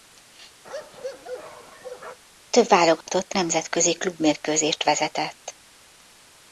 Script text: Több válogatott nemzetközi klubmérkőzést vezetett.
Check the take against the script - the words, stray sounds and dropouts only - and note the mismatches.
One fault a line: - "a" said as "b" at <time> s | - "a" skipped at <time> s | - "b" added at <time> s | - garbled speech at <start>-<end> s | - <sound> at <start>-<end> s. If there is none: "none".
- bark at 0.6-2.2 s
- dropout at 3.0-3.1 s